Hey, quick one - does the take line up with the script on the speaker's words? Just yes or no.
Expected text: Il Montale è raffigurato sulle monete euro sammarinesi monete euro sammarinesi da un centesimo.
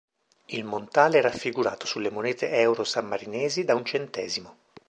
no